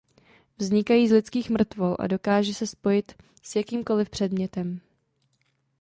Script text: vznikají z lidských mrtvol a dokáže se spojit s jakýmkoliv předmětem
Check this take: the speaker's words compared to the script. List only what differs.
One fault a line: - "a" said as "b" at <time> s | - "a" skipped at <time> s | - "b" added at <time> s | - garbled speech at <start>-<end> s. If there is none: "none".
none